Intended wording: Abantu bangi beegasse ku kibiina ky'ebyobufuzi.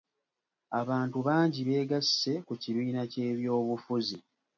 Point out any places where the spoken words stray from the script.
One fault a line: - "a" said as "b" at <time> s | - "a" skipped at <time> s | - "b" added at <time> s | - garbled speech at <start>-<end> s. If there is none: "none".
none